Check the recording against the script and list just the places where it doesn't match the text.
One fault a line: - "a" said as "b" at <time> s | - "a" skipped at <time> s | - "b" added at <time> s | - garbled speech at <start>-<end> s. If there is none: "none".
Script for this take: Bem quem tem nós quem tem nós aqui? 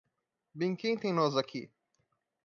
- "quem tem nós" skipped at 1.4 s